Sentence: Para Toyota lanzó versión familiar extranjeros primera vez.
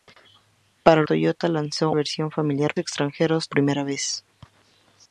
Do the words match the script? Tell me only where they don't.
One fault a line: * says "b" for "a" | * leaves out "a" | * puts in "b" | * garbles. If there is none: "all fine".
all fine